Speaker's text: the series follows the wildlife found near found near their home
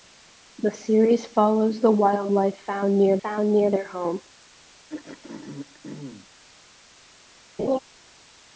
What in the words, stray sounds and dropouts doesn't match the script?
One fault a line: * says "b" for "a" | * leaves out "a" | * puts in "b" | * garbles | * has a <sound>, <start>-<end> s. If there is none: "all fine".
* has a throat clearing, 4.9-6.3 s
* has a laugh, 7.6-7.8 s